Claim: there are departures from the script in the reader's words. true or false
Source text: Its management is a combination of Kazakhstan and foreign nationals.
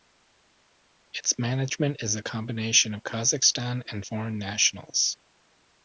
false